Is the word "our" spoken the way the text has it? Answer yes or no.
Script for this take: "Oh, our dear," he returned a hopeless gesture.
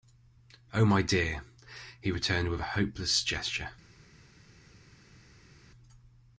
no